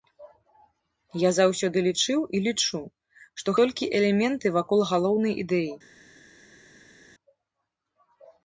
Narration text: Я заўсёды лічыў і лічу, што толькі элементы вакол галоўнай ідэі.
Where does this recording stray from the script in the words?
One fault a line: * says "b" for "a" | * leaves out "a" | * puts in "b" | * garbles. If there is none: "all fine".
all fine